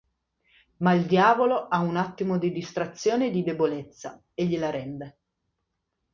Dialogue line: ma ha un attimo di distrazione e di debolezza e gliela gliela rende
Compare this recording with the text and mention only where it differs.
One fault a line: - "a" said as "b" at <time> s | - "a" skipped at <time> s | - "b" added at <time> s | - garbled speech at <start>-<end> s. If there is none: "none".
- "il diavolo" added at 0.9 s
- "gliela" skipped at 4.7 s